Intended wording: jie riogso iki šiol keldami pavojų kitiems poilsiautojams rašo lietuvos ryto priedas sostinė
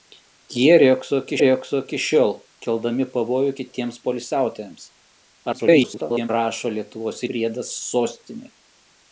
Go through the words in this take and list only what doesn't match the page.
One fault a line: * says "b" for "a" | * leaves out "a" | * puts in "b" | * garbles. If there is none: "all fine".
* puts in "riogso iki"
* garbles
* leaves out "ryto"